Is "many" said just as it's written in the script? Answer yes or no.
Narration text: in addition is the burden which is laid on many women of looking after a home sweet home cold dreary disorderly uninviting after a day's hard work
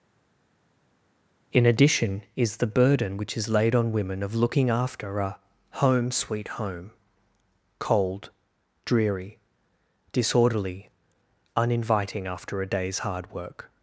no